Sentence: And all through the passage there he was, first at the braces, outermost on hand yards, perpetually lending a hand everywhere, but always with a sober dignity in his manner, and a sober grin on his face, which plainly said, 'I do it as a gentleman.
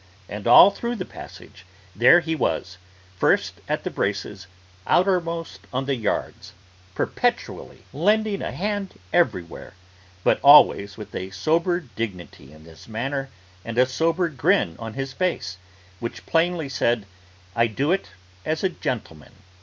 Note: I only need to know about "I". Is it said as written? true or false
true